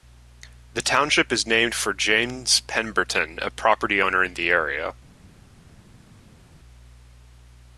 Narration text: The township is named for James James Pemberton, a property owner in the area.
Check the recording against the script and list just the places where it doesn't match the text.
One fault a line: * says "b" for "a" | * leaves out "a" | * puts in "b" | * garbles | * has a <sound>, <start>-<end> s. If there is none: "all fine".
* leaves out "James"